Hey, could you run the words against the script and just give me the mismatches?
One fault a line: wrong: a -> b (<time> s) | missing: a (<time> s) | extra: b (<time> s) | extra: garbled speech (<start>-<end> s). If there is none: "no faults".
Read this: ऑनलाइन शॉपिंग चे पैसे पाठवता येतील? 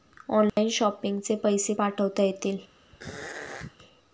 no faults